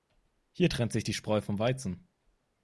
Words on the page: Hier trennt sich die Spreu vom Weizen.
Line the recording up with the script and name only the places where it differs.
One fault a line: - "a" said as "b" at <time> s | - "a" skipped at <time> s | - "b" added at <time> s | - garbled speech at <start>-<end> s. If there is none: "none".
none